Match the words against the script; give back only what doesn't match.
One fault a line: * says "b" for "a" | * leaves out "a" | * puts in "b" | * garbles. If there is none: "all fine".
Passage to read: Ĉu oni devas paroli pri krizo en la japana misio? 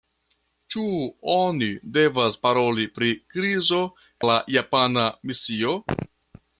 * leaves out "en"